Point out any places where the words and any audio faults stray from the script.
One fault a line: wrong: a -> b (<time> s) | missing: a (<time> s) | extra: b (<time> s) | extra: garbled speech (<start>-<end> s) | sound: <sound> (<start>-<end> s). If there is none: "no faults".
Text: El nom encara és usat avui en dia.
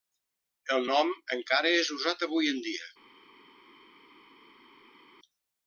no faults